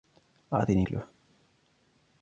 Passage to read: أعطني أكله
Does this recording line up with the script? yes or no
yes